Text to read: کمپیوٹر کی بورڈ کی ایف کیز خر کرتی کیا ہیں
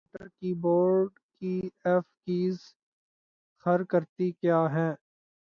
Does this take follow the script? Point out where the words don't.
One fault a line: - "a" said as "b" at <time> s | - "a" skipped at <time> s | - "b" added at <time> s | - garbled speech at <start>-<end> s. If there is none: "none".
none